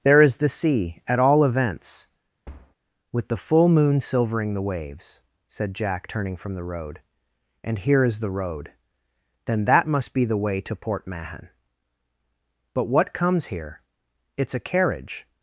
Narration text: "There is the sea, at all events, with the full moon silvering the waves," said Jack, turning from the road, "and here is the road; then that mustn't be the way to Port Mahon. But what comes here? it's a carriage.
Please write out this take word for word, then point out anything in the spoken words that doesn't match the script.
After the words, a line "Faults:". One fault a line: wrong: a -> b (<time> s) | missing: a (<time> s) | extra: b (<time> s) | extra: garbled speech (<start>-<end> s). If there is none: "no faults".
"There is the sea, at all events, with the full moon silvering the waves," said Jack, turning from the road, "and here is the road; then that must be the way to Port Mahon. But what comes here? it's a carriage.
Faults:
wrong: mustn't -> must (9.9 s)